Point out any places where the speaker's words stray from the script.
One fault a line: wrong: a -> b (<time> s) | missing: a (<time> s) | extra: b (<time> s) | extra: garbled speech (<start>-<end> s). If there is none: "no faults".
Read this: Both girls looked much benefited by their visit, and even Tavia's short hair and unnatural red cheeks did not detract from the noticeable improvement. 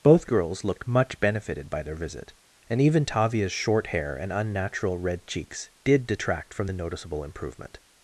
missing: not (6.0 s)